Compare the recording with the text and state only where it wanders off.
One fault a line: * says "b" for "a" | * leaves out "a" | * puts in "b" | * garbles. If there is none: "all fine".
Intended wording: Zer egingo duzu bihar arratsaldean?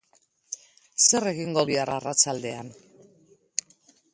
* leaves out "duzu"